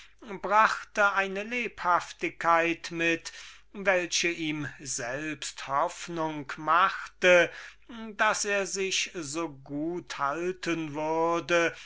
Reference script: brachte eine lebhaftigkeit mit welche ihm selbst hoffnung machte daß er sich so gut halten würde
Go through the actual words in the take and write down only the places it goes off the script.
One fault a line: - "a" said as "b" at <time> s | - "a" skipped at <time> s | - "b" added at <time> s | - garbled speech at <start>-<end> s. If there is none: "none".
none